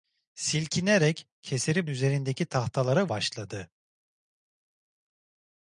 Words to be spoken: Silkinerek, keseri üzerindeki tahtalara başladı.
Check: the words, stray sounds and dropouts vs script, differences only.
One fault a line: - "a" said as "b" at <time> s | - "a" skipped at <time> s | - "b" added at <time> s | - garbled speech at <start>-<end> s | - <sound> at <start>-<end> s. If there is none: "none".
none